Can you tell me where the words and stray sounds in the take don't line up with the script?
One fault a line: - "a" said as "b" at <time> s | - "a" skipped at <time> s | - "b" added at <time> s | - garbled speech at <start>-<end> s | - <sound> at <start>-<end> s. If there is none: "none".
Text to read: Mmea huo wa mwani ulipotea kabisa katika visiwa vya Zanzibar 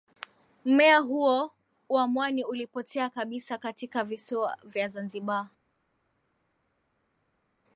none